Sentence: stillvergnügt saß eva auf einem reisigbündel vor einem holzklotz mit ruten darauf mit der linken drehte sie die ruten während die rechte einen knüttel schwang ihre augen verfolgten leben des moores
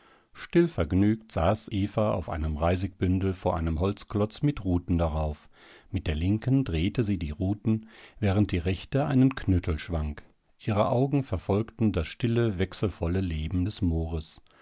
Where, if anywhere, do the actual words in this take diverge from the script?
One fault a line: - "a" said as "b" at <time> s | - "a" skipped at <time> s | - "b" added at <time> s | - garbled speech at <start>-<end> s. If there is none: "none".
- "das stille wechselvolle" added at 11.9 s